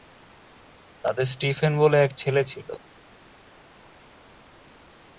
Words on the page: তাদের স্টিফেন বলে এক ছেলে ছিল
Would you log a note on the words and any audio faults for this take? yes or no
no